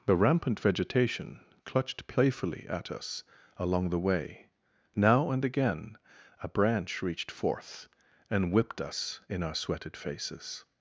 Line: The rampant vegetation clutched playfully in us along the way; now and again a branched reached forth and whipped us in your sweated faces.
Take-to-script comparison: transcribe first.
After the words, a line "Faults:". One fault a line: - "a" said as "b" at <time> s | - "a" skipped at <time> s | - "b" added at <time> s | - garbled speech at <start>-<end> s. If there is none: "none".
The rampant vegetation clutched playfully at us along the way; now and again a branch reached forth and whipped us in our sweated faces.
Faults:
- "in" said as "at" at 2.7 s
- "branched" said as "branch" at 6.5 s
- "your" said as "our" at 9.4 s